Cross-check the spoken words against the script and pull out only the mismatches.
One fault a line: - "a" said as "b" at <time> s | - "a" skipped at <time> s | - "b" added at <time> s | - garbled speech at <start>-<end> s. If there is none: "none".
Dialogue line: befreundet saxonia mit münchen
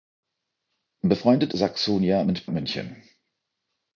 none